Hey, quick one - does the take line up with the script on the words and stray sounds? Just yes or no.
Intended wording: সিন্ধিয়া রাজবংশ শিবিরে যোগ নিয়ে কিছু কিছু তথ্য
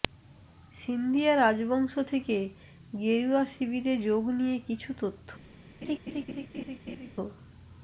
no